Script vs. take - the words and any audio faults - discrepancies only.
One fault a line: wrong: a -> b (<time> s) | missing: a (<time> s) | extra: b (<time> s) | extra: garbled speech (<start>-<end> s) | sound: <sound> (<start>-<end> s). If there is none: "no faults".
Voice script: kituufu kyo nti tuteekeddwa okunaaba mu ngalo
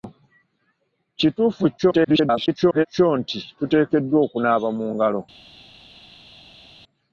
extra: garbled speech (1.8-2.9 s)